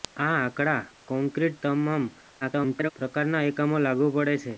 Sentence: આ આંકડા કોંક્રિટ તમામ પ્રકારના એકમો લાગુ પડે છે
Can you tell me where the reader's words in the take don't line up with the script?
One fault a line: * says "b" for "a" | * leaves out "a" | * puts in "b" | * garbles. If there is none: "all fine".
* garbles